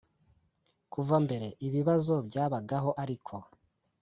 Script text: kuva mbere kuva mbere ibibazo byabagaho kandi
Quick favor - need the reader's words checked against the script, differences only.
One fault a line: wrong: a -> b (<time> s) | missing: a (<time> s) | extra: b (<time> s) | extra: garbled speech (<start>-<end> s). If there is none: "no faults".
missing: kuva mbere (1.5 s)
wrong: kandi -> ariko (3.0 s)